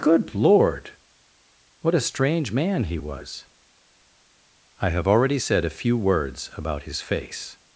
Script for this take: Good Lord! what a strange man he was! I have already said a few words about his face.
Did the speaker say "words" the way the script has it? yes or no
yes